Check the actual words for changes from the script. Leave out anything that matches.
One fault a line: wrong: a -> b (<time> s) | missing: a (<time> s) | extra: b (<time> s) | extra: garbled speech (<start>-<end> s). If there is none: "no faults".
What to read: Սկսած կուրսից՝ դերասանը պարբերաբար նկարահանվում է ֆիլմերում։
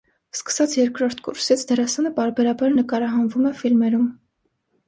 extra: երկրորդ (0.8 s)